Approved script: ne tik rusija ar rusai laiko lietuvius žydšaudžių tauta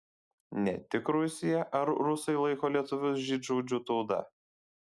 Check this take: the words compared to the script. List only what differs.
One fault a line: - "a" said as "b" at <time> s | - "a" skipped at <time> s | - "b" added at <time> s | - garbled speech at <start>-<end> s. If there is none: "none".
none